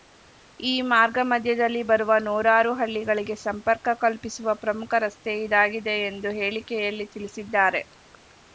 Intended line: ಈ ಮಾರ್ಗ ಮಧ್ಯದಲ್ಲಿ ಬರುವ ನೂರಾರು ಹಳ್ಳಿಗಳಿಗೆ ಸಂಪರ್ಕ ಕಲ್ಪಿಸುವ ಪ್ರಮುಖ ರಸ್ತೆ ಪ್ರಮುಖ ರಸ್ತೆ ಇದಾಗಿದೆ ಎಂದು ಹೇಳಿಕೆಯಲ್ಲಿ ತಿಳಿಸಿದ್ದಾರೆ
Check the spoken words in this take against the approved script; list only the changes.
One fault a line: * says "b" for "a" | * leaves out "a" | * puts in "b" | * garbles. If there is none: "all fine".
* leaves out "ಪ್ರಮುಖ ರಸ್ತೆ"